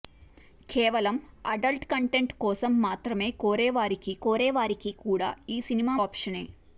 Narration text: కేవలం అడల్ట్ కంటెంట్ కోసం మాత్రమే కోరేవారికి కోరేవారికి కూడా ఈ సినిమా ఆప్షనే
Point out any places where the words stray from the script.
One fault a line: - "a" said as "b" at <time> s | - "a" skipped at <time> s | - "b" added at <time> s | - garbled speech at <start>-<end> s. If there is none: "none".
none